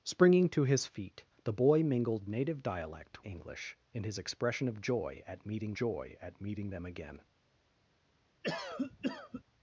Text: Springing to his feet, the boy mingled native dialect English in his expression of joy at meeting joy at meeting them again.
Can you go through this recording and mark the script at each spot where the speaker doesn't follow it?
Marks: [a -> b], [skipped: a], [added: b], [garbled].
Springing to his feet, the boy mingled native dialect English in his expression of joy at meeting joy at meeting them again.